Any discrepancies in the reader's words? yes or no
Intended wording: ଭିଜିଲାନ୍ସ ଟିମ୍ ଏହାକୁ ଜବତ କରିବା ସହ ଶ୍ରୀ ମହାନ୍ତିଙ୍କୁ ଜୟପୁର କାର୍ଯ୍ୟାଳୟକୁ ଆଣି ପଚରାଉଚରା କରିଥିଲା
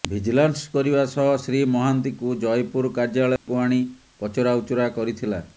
yes